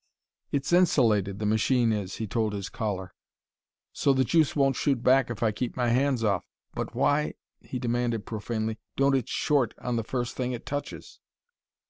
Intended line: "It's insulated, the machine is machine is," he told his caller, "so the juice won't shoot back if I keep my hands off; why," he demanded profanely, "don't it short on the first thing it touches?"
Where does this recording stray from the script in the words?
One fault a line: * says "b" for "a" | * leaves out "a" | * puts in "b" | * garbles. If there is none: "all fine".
* leaves out "machine is"
* puts in "but"